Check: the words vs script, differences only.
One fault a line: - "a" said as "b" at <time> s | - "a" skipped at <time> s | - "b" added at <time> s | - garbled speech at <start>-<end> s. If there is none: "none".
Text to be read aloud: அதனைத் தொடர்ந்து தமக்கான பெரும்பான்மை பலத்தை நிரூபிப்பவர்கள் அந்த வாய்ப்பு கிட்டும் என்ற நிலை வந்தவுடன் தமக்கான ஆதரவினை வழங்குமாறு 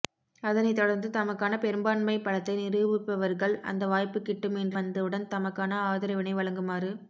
- "நிலை" skipped at 4.8 s